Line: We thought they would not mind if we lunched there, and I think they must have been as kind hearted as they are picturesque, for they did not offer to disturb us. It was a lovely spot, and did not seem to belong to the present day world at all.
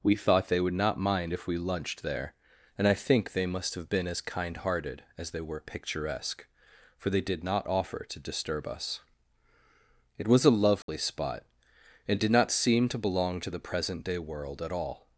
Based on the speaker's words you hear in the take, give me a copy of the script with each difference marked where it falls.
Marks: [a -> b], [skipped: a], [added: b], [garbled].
We thought they would not mind if we lunched there, and I think they must have been as kind hearted as they [are -> were] picturesque, for they did not offer to disturb us. It was a lovely spot, and did not seem to belong to the present day world at all.